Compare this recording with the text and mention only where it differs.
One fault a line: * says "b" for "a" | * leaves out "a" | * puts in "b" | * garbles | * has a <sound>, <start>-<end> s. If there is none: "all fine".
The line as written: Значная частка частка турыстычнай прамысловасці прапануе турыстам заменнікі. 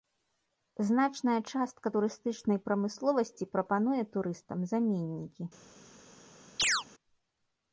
* leaves out "частка"
* has a chirp, 6.6-6.8 s